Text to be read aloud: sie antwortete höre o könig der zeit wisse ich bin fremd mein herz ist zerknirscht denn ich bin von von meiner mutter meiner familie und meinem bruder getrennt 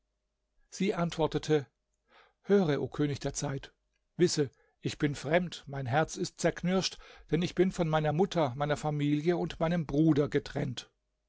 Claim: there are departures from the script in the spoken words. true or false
true